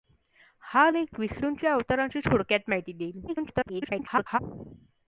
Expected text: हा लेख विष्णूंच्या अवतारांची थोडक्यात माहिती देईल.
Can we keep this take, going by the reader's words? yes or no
no